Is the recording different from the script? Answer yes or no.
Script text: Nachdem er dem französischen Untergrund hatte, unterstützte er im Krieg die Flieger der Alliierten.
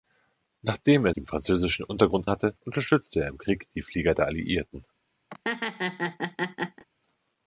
no